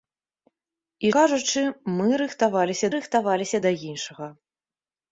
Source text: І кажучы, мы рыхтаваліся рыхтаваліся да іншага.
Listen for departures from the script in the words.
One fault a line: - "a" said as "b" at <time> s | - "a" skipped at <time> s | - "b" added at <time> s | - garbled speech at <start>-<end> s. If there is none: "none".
none